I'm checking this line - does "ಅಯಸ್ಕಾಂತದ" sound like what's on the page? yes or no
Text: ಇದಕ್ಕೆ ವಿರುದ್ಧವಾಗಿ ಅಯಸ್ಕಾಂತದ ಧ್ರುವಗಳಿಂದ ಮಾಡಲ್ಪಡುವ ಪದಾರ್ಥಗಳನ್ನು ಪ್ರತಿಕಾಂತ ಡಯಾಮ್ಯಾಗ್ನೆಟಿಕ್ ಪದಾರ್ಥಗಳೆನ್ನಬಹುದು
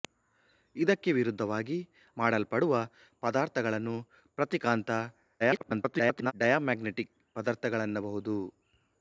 no